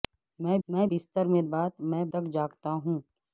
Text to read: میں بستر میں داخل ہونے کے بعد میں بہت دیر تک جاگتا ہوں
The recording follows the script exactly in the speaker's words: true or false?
false